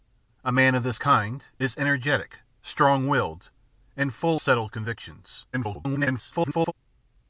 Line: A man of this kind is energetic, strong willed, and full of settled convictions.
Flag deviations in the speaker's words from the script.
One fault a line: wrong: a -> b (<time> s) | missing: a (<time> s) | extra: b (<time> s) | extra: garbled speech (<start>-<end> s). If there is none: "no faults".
missing: of (4.4 s)
extra: garbled speech (5.5-6.7 s)